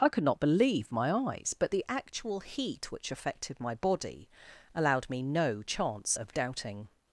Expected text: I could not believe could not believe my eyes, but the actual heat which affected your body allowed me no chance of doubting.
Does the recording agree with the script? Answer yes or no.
no